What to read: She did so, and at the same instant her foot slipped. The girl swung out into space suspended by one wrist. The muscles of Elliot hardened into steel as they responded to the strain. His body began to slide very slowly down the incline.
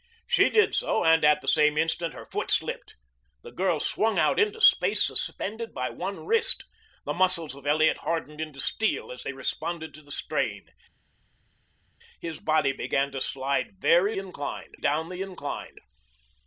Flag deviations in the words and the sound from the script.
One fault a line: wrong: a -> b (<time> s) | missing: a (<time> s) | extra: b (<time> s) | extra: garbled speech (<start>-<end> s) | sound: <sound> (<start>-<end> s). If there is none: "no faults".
wrong: slowly -> incline (14.2 s)